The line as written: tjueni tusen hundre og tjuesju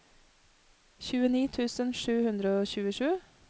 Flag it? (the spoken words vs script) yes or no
yes